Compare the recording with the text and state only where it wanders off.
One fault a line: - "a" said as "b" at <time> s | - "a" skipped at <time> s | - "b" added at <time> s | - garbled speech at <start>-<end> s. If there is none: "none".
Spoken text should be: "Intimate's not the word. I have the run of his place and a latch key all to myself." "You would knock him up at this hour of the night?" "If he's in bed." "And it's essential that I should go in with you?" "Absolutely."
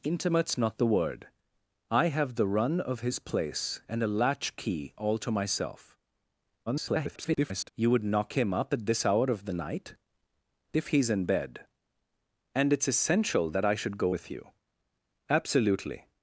- garbled speech at 6.7-7.7 s
- "in" skipped at 14.2 s